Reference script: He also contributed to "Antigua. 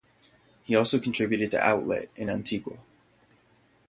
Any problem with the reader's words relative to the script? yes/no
yes